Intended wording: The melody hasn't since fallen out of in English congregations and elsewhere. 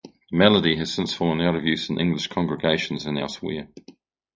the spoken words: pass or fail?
fail